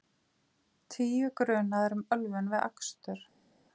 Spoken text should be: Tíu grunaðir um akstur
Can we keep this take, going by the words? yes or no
no